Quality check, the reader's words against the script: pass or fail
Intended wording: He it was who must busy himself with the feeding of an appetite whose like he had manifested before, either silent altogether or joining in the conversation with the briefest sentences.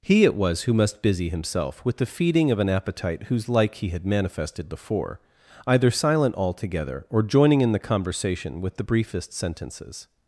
pass